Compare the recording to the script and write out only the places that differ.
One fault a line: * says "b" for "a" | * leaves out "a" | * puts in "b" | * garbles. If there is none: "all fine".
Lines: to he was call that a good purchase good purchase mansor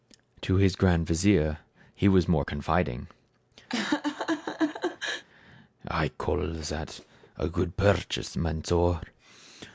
* puts in "his grand vizier"
* puts in "more confiding i"
* leaves out "good purchase"